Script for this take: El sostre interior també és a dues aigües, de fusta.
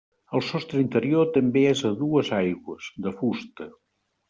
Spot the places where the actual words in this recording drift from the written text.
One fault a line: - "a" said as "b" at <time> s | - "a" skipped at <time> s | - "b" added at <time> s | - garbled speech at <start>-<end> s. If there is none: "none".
none